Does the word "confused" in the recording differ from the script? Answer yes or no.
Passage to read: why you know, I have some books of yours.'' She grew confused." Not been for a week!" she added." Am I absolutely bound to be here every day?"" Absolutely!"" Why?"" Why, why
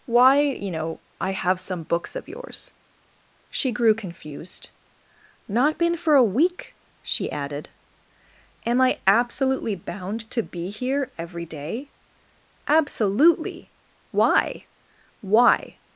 no